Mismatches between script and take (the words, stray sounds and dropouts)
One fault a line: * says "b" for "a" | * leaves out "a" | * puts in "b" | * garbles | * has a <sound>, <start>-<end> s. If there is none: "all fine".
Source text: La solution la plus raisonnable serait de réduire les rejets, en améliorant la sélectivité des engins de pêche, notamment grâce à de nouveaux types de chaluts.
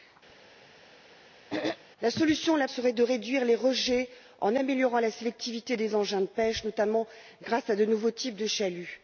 * has a throat clearing, 0.3-1.8 s
* leaves out "plus raisonnable"